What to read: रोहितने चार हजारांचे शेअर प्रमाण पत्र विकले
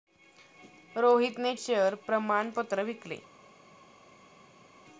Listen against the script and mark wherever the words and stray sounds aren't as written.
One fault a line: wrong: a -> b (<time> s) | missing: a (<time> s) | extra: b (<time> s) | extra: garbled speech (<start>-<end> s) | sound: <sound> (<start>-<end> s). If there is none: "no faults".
missing: चार हजारांचे (1.5 s)